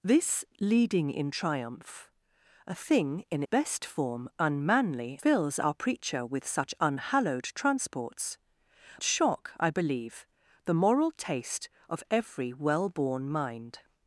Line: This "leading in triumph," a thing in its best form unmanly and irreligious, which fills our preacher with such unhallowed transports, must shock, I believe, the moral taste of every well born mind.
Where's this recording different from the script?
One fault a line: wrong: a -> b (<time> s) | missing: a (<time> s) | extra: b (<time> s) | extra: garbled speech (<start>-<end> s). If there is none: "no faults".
missing: its (3.4 s)
missing: and irreligious which (5.2 s)
missing: must (8.4 s)